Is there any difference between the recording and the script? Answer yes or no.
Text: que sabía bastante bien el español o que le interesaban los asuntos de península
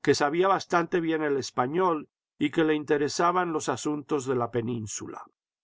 yes